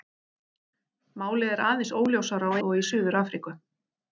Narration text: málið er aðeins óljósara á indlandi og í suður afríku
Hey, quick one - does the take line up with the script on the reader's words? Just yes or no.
no